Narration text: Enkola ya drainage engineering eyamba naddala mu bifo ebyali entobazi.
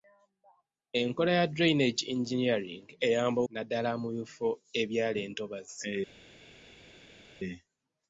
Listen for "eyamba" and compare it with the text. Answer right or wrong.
right